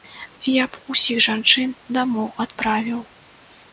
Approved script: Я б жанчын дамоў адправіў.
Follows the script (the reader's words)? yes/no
no